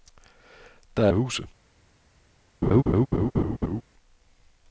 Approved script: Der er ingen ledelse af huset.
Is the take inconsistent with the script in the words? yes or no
yes